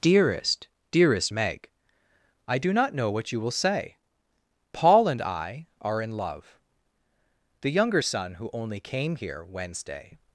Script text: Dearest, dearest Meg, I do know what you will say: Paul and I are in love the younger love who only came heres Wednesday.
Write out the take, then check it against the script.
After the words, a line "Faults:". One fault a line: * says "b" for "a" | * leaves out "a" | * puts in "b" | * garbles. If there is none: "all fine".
Dearest, dearest Meg, I do not know what you will say: Paul and I are in love the younger son who only came here Wednesday.
Faults:
* puts in "not"
* says "son" for "love"
* says "here" for "heres"